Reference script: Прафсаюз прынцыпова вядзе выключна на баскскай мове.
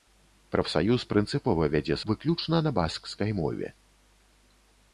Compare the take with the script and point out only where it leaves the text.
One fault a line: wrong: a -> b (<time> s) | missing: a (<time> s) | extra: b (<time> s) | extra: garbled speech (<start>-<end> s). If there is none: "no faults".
no faults